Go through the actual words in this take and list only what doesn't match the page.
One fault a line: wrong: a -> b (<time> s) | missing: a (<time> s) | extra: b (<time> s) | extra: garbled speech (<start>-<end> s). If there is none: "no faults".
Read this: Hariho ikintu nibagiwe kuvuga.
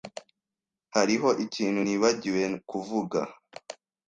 no faults